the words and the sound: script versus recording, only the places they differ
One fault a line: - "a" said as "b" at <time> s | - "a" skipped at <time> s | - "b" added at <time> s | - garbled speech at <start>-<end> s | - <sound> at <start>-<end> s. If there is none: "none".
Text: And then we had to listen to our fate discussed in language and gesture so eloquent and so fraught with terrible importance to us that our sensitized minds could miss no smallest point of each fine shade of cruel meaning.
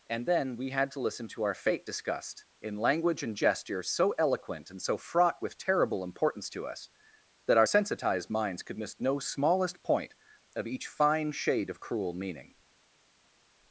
none